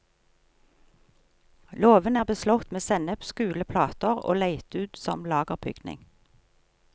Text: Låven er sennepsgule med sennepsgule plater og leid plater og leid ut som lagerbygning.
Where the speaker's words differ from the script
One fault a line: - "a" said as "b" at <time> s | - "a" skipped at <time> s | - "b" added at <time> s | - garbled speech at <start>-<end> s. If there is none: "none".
- "sennepsgule" said as "beslått" at 2.2 s
- "plater og leid" skipped at 4.8 s